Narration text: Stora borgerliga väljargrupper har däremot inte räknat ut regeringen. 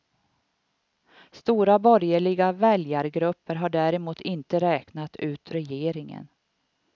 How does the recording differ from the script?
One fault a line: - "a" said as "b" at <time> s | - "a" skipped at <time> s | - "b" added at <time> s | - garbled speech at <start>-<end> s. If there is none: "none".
none